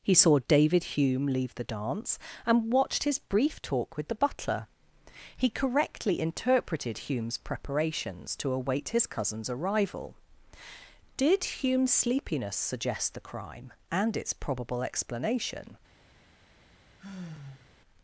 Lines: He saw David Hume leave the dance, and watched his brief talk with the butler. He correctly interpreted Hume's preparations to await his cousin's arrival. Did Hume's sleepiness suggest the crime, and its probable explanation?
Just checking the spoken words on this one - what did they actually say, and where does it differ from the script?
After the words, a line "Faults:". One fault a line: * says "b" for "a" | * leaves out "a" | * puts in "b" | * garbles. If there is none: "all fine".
He saw David Hume leave the dance, and watched his brief talk with the butler. He correctly interpreted Hume's preparations to await his cousin's arrival. Did Hume's sleepiness suggest the crime, and its probable explanation?
Faults:
all fine